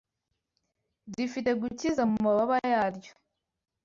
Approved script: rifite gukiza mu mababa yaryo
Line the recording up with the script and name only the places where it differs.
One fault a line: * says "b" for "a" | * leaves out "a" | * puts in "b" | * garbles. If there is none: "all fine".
all fine